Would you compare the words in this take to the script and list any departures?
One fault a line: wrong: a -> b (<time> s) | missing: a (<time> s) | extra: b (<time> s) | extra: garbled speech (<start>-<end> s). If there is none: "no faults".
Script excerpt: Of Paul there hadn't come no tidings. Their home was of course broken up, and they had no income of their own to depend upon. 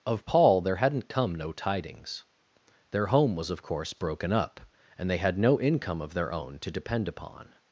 no faults